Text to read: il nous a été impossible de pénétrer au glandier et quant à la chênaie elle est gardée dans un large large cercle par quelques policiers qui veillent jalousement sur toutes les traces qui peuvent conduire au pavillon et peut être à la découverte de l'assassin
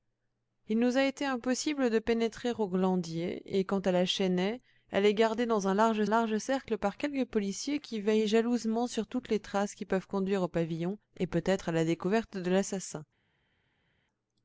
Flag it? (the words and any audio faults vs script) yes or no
no